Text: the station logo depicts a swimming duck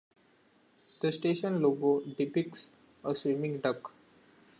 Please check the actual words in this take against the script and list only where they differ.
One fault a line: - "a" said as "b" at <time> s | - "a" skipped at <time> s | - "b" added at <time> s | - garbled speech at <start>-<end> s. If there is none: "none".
none